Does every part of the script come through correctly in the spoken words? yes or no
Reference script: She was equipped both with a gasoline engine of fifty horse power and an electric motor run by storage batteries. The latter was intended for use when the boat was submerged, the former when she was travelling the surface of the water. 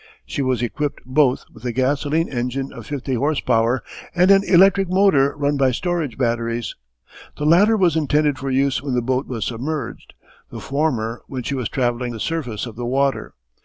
yes